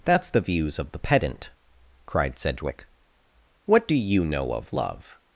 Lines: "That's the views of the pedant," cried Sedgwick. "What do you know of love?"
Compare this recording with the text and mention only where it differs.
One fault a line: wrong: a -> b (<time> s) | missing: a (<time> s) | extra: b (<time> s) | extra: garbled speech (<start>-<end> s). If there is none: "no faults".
no faults